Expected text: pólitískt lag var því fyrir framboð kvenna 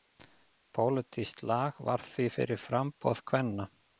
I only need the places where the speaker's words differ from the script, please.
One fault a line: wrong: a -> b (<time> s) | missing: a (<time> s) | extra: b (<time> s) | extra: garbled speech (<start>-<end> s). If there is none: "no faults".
no faults